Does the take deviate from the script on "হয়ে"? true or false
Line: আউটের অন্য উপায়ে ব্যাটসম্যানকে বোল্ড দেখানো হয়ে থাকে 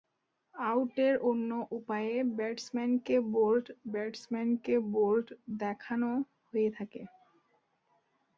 false